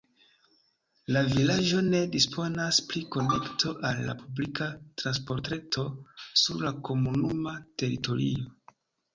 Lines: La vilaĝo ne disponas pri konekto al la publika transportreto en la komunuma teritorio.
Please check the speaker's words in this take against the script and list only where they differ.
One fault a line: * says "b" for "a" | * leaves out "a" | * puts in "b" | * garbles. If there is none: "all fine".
* says "sur" for "en"